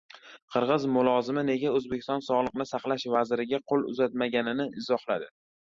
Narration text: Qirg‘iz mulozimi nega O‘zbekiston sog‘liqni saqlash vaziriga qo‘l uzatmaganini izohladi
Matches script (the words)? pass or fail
pass